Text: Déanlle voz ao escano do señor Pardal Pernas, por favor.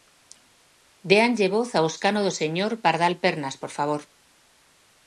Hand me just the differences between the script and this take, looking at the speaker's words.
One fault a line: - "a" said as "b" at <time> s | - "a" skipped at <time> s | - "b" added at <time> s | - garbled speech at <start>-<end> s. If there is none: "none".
none